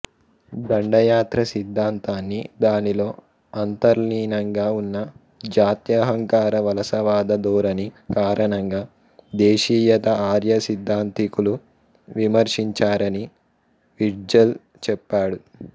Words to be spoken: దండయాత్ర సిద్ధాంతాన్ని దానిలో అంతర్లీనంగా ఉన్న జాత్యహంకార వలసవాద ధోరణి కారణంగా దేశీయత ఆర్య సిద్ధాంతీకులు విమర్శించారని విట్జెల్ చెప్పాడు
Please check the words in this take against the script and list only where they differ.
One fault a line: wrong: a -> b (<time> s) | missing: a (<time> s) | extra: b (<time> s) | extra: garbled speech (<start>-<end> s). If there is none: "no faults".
no faults